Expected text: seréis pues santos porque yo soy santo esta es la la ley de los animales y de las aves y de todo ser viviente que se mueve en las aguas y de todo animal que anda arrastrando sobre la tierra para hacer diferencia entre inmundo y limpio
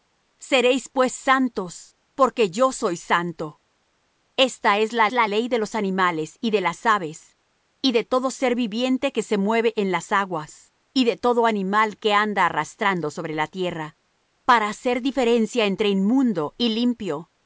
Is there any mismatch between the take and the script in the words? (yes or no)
no